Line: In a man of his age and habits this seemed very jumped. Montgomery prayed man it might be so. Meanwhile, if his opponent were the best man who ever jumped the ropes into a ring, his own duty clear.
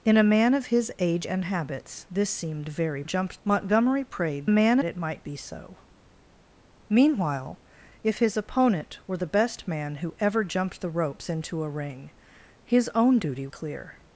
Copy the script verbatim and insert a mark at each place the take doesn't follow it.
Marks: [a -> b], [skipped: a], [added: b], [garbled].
In a man of his age and habits this seemed very jumped. Montgomery prayed man it might be so. Meanwhile, if his opponent were the best man who ever jumped the ropes into a ring, his own duty clear.